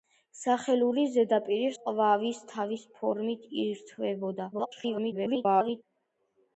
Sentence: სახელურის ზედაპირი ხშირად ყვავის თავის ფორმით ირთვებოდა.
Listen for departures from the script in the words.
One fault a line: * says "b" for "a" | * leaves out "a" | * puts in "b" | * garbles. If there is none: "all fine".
* leaves out "ხშირად"
* garbles